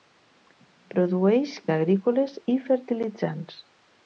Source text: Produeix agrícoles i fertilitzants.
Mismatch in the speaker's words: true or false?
false